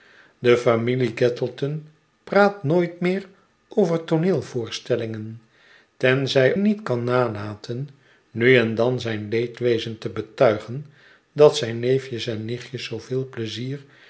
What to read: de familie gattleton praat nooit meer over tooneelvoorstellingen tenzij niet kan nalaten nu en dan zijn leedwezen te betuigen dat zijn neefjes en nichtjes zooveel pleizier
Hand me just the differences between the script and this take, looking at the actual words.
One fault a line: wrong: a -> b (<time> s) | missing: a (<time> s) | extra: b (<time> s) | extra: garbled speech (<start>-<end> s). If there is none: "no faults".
no faults